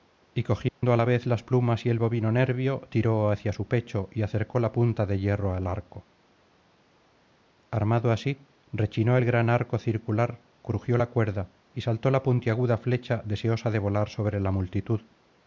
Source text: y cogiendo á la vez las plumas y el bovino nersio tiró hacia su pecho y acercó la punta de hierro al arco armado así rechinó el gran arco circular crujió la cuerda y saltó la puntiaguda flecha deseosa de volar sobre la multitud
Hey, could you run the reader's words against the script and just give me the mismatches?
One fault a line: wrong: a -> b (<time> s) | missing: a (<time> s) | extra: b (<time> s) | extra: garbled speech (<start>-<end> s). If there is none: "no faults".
no faults